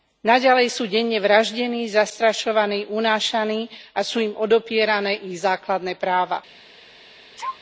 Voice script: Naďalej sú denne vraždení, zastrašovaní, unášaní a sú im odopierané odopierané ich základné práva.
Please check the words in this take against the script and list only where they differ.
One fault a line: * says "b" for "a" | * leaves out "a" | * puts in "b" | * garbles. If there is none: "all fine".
* leaves out "odopierané"